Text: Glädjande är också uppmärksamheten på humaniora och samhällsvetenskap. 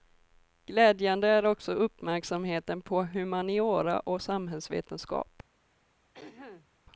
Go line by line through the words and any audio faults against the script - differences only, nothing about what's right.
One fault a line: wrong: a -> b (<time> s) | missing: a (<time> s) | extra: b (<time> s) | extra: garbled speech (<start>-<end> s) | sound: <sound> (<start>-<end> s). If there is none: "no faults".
sound: throat clearing (6.1-6.7 s)